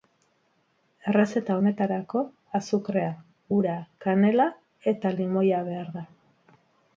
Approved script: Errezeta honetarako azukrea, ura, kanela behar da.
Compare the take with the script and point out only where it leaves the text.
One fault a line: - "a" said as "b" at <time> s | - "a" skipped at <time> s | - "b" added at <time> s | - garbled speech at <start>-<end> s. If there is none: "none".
- "eta limoia" added at 4.9 s